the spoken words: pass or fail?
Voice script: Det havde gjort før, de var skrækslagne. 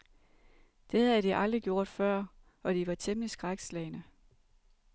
fail